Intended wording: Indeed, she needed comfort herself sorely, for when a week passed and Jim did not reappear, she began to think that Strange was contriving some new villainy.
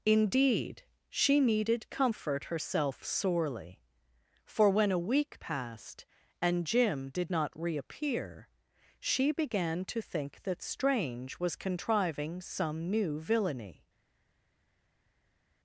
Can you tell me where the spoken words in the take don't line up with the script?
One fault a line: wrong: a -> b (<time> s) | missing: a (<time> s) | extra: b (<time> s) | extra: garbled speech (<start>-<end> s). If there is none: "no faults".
no faults